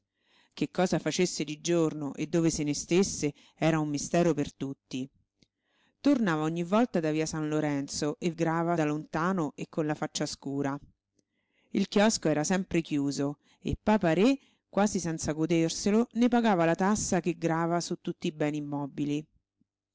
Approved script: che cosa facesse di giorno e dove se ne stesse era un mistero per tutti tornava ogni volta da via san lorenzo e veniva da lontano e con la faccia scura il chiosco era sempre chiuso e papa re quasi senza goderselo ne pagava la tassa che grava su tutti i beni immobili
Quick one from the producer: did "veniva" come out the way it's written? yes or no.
no